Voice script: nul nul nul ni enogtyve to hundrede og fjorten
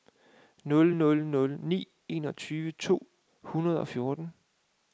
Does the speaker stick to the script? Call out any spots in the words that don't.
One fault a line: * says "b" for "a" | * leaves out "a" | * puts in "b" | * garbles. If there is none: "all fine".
all fine